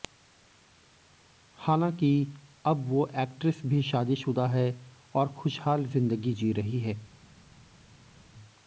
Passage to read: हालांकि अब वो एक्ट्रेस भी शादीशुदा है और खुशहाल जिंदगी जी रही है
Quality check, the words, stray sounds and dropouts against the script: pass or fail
pass